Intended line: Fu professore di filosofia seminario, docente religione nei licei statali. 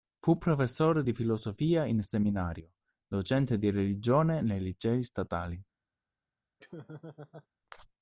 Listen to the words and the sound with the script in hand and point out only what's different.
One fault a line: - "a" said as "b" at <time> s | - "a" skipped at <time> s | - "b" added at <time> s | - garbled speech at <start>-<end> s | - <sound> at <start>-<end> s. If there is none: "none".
- "in" added at 1.8 s
- "di" added at 3.6 s
- laugh at 6.6-7.5 s